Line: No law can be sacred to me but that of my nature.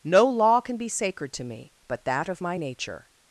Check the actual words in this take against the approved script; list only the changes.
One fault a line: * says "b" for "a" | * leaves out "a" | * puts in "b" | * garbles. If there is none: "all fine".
all fine